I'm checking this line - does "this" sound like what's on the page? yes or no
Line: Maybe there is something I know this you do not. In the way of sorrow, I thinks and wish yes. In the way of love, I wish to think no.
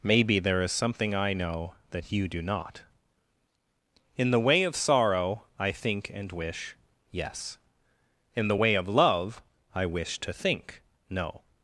no